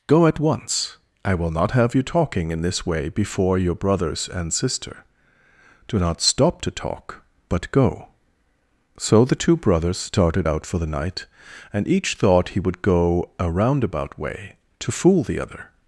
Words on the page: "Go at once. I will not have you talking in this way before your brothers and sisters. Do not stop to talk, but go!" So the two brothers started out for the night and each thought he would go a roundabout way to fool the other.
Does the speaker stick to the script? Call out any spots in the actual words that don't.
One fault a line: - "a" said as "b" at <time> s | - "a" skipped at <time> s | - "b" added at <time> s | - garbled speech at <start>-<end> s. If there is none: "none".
- "sisters" said as "sister" at 4.5 s